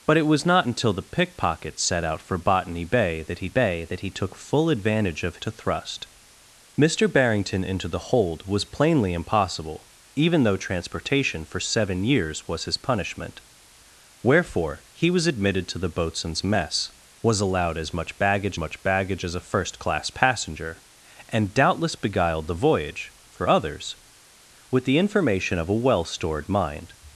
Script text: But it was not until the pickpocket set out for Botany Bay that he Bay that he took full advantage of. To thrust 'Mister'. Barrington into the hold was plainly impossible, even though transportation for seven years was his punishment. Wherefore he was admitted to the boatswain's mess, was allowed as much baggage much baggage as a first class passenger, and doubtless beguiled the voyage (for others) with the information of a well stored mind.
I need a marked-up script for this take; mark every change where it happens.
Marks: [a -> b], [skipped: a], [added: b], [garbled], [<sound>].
But it was not until the pickpocket set out for Botany Bay that he Bay that he took full advantage of. To thrust 'Mister'. Barrington into the hold was plainly impossible, even though transportation for seven years was his punishment. Wherefore he was admitted to the boatswain's mess, was allowed as much baggage much baggage as a first class passenger, and doubtless beguiled the voyage (for others) with the information of a well stored mind.